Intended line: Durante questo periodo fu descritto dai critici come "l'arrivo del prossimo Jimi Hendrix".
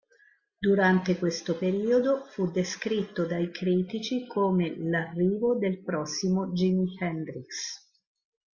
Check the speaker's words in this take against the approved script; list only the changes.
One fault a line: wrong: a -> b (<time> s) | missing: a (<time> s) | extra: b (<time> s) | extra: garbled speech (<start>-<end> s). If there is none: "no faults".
no faults